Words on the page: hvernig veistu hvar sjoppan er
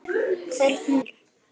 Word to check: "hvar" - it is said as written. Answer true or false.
false